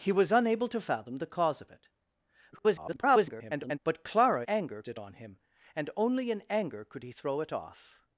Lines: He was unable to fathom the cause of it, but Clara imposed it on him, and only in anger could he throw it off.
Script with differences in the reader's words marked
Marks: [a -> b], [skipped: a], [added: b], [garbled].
He was unable to fathom the cause of it, [garbled] but Clara [imposed -> anger] it on him, and only in anger could he throw it off.